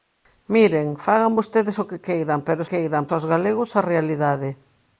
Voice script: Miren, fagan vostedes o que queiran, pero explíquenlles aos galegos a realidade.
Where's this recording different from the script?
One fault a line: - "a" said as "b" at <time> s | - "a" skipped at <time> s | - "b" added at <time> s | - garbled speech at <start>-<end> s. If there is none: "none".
- "explíquenlles" said as "queiran" at 2.7 s